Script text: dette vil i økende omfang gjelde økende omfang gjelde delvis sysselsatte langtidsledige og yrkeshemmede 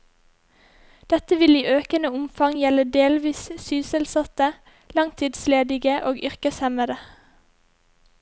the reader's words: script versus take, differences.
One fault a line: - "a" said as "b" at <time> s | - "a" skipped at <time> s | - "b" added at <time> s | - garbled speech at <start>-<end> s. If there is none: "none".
- "økende omfang gjelde" skipped at 2.9 s